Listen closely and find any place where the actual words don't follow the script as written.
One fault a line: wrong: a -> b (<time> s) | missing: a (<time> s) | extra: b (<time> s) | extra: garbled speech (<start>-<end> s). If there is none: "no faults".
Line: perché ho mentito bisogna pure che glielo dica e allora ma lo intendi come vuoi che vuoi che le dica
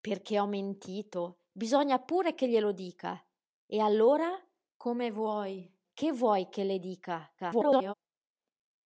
missing: ma lo intendi (4.3 s)
extra: garbled speech (7.4-7.9 s)